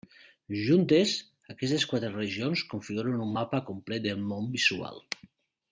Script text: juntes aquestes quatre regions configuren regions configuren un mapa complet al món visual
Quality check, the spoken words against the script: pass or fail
fail